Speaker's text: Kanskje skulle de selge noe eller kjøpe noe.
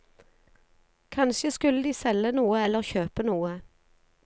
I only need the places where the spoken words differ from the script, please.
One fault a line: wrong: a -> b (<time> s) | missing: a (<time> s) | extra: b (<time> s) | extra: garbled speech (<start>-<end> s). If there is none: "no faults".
no faults